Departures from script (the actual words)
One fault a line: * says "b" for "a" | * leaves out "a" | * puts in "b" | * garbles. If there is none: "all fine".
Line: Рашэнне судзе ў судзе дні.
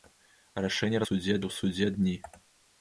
all fine